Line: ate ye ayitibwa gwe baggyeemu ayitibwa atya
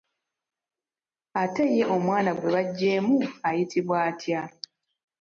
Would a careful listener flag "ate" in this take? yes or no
no